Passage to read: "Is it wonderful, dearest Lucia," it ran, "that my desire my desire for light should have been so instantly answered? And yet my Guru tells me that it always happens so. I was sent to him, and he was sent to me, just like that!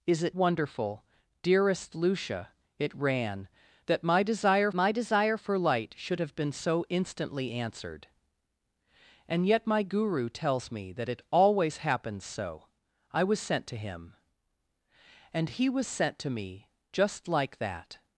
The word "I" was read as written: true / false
true